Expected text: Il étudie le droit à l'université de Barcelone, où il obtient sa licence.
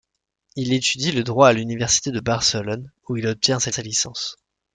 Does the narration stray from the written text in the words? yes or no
yes